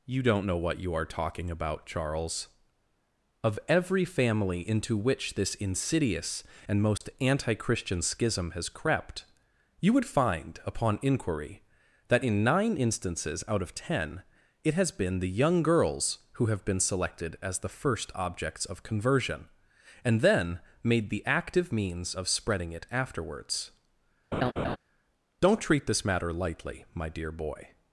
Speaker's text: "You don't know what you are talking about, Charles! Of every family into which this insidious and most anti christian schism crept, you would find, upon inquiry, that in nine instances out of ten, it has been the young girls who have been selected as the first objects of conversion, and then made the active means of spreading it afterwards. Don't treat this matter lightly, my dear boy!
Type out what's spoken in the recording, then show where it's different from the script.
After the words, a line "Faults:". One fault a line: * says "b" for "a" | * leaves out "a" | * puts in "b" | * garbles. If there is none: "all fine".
"You don't know what you are talking about, Charles! Of every family into which this insidious and most anti christian schism has crept, you would find, upon inquiry, that in nine instances out of ten, it has been the young girls who have been selected as the first objects of conversion, and then made the active means of spreading it afterwards. Don't treat this matter lightly, my dear boy!
Faults:
* puts in "has"